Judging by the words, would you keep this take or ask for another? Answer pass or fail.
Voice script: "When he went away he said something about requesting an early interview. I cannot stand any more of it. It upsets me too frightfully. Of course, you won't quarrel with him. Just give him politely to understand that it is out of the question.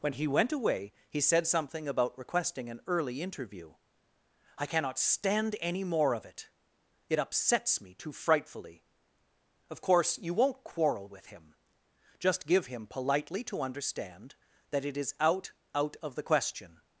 fail